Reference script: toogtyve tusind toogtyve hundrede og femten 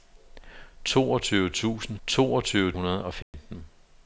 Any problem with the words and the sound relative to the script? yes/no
yes